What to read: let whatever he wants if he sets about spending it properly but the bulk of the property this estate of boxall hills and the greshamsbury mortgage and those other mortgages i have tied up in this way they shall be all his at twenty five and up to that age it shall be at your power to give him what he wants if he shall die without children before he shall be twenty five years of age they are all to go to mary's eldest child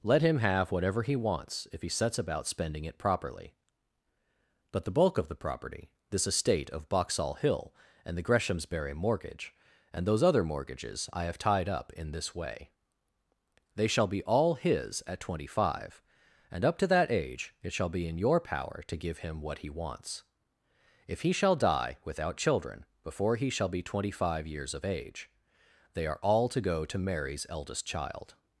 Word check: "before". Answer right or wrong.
right